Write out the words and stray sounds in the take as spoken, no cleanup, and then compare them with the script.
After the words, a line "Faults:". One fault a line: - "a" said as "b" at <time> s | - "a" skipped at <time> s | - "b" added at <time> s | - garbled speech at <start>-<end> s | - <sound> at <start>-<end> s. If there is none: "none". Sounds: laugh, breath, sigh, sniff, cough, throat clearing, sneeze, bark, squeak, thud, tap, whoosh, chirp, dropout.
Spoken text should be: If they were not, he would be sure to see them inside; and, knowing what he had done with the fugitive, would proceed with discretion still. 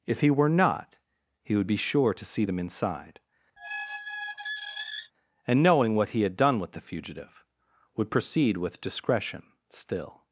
If he were not, he would be sure to see them inside; and, knowing what he had done with the fugitive, would proceed with discretion still.
Faults:
- "they" said as "he" at 0.2 s
- squeak at 3.6-5.1 s